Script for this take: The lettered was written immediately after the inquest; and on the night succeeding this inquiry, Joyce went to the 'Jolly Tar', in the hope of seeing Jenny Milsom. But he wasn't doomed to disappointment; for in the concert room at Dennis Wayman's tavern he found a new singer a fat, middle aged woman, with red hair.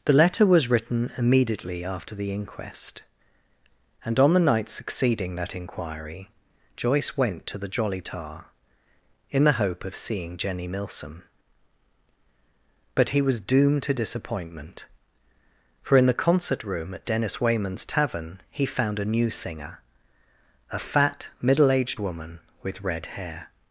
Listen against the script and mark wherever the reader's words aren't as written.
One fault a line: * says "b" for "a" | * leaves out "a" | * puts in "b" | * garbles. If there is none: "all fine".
* says "letter" for "lettered"
* says "that" for "this"
* says "was" for "wasn't"